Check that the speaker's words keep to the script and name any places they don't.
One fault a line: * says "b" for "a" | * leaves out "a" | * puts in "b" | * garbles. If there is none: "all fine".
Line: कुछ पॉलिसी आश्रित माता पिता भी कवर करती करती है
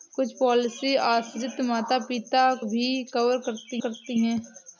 all fine